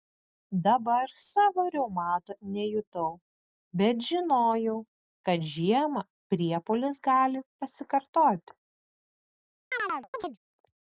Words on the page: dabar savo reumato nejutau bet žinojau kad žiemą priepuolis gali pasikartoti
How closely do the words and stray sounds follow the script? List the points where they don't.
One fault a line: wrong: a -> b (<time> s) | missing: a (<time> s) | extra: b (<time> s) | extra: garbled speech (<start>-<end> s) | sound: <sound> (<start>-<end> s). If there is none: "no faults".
sound: chirp (9.7-10.4 s)